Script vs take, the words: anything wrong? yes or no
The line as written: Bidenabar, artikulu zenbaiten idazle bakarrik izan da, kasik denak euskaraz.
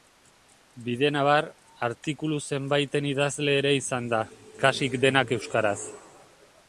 yes